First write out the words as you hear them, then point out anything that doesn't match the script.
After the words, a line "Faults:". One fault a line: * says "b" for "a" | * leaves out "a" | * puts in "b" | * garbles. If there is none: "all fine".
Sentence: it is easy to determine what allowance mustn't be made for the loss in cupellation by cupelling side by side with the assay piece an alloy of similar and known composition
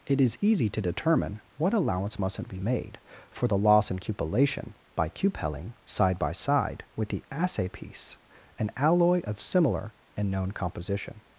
it is easy to determine what allowance mustn't be made for the loss in cupellation by cupelling side by side with the assay piece an alloy of similar and known composition
Faults:
all fine